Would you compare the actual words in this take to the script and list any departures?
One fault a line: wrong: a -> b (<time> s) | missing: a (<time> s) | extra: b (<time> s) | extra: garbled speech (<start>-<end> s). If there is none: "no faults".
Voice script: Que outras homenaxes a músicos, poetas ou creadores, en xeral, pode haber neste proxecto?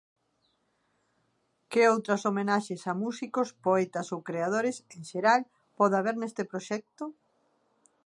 no faults